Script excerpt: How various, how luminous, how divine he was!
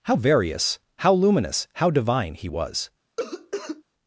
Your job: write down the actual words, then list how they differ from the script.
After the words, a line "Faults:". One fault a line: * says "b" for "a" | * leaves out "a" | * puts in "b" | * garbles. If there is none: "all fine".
How various, how luminous, how divine he was!
Faults:
all fine